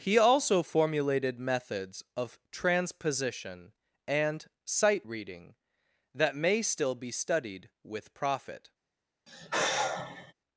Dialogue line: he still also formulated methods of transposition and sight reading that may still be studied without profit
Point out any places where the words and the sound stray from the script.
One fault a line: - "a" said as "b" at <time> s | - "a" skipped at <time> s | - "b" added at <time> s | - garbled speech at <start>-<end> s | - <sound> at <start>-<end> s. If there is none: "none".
- "still" skipped at 0.2 s
- "without" said as "with" at 7.8 s
- sigh at 9.3-10.3 s